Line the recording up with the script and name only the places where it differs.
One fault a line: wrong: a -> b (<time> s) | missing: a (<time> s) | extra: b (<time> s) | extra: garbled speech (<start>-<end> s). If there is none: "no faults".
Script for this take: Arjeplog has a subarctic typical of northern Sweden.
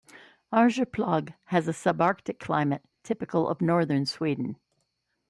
extra: climate (2.4 s)